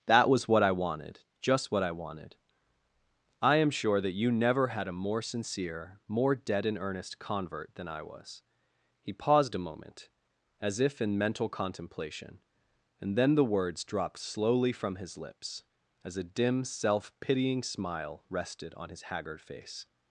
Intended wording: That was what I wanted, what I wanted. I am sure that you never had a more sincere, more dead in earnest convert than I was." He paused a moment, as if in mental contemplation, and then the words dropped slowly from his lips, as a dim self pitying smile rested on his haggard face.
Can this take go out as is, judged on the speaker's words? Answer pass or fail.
fail